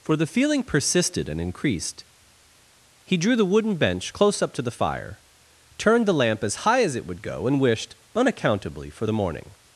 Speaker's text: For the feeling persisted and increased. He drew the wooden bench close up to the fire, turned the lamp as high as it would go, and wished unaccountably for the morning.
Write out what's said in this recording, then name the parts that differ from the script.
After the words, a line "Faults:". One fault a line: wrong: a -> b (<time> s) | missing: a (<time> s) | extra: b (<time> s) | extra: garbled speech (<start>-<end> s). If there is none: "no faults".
For the feeling persisted and increased. He drew the wooden bench close up to the fire, turned the lamp as high as it would go, and wished unaccountably for the morning.
Faults:
no faults